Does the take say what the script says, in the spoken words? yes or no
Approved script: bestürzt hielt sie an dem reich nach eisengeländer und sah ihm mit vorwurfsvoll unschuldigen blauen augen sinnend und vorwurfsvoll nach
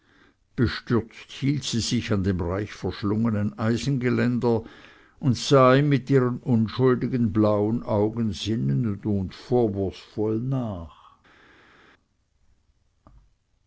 no